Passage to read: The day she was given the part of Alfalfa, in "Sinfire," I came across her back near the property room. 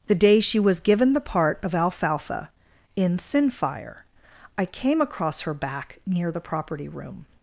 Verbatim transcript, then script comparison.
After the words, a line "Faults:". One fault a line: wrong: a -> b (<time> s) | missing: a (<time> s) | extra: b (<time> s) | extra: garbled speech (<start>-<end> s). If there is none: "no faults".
The day she was given the part of Alfalfa, in "Sinfire," I came across her back near the property room.
Faults:
no faults